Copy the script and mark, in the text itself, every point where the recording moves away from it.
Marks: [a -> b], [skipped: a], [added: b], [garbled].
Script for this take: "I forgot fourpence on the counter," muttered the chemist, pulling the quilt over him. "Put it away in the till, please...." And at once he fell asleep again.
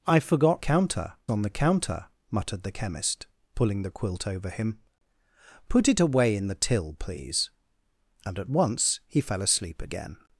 "I forgot [fourpence -> counter] on the counter," muttered the chemist, pulling the quilt over him. "Put it away in the till, please...." And at once he fell asleep again.